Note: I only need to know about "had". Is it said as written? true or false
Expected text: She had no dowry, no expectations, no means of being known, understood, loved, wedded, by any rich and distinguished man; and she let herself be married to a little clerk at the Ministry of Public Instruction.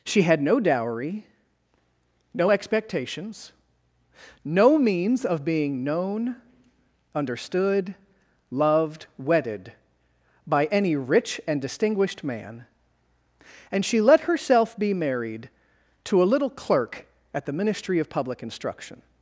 true